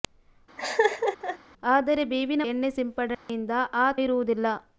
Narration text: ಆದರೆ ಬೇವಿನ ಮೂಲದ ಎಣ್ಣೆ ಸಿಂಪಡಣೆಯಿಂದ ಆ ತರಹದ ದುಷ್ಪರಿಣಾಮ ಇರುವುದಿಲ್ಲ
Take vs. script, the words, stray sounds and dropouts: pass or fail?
fail